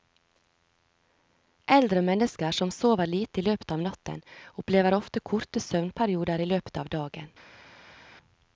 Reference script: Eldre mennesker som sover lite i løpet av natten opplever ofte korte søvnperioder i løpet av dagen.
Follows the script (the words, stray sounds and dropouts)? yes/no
yes